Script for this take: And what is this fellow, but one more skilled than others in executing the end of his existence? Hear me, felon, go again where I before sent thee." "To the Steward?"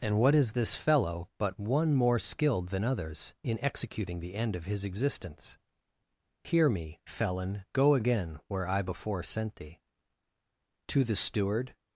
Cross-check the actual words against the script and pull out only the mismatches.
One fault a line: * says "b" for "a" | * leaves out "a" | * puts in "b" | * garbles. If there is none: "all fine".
all fine